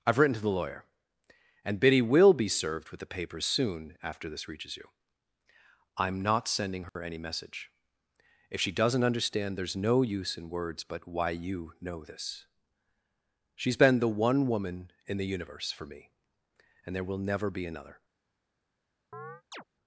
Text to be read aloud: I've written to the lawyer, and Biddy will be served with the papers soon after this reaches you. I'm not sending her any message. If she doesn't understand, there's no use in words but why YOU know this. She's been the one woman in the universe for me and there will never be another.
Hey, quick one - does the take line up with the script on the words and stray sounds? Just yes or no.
no